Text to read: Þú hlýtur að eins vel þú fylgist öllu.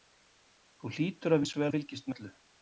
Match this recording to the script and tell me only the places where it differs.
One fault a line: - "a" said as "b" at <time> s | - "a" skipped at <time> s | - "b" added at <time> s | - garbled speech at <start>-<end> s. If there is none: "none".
none